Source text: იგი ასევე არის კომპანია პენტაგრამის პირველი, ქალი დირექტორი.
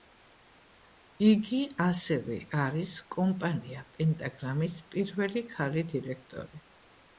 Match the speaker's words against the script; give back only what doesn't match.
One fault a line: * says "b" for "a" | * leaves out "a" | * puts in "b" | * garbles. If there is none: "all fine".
all fine